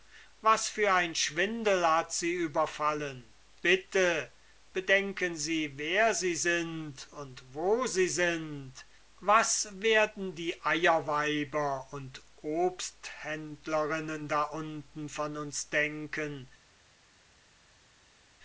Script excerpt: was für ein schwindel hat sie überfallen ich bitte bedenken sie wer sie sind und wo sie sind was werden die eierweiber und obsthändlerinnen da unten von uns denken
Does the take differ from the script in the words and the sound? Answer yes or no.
yes